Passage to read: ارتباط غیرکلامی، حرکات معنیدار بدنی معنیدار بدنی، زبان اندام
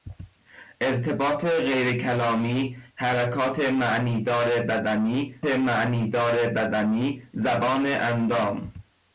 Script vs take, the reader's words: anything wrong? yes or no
no